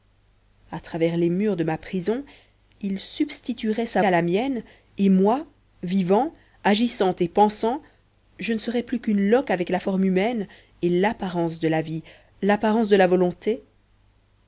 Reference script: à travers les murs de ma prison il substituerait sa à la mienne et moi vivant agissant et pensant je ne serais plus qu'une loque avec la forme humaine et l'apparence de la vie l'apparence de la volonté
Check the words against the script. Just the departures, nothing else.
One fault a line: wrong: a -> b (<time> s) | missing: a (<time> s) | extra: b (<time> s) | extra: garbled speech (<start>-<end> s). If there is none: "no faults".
no faults